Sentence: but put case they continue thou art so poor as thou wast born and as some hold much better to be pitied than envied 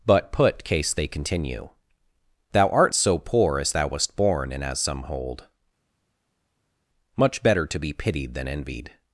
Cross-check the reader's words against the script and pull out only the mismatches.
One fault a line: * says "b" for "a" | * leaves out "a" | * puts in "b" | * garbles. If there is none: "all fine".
all fine